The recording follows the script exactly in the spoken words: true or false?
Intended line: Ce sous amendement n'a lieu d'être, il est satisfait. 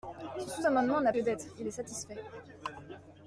true